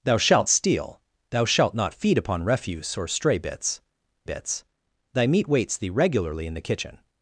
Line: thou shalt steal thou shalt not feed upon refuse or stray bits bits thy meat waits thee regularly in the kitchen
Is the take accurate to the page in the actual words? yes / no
yes